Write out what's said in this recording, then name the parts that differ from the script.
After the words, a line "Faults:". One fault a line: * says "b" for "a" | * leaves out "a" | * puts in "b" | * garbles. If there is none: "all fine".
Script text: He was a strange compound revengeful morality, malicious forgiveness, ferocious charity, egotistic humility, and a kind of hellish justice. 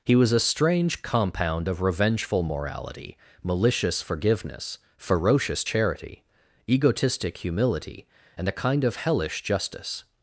He was a strange compound of revengeful morality, malicious forgiveness, ferocious charity, egotistic humility, and a kind of hellish justice.
Faults:
* puts in "of"